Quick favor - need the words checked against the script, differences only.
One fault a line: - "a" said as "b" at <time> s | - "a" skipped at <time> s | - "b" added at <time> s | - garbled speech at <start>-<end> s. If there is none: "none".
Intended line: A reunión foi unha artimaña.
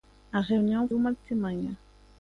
- "foi" skipped at 0.8 s